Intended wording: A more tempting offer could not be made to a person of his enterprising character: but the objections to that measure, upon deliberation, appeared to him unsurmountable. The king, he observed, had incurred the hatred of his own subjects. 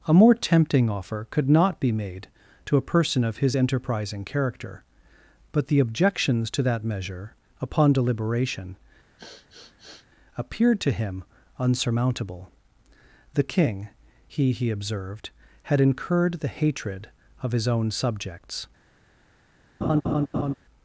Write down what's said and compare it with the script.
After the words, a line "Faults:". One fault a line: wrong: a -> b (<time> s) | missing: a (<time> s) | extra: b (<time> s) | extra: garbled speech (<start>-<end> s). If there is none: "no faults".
A more tempting offer could not be made to a person of his enterprising character: but the objections to that measure, upon deliberation, appeared to him unsurmountable. The king, he he observed, had incurred the hatred of his own subjects.
Faults:
extra: he (14.5 s)